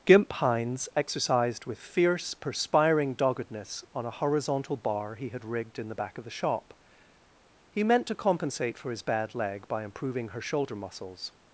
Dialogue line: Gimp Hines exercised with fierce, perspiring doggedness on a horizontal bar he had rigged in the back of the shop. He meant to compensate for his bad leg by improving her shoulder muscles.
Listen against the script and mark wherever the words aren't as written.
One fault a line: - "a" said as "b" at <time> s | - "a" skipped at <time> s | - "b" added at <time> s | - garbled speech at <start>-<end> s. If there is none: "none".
none